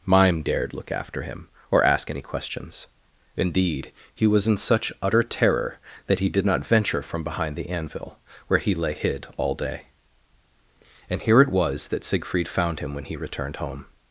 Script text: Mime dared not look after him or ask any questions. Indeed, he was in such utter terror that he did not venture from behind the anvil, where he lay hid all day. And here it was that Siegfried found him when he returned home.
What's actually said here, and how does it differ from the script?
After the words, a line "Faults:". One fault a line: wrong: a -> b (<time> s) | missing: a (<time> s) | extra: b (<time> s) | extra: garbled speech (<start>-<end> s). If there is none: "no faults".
Mime dared look after him or ask any questions. Indeed, he was in such utter terror that he did not venture from behind the anvil, where he lay hid all day. And here it was that Siegfried found him when he returned home.
Faults:
missing: not (0.7 s)